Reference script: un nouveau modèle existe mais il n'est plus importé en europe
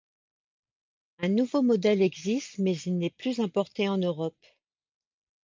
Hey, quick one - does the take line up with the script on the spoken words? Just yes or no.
yes